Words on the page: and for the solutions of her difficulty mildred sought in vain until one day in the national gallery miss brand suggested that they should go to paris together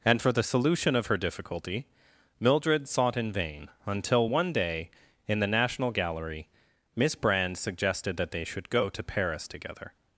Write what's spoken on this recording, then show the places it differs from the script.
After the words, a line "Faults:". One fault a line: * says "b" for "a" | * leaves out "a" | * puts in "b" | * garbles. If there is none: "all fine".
and for the solution of her difficulty mildred sought in vain until one day in the national gallery miss brand suggested that they should go to paris together
Faults:
* says "solution" for "solutions"